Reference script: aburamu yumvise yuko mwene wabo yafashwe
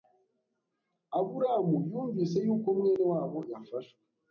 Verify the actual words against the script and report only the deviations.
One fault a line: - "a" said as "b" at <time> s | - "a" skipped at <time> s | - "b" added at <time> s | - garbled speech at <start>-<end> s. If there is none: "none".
none